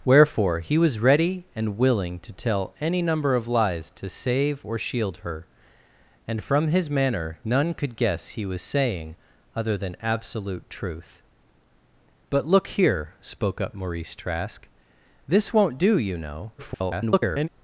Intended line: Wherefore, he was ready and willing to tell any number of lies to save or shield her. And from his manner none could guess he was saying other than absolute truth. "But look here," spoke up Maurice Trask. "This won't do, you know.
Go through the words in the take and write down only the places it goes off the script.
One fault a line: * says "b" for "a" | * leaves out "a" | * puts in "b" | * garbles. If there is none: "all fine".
* garbles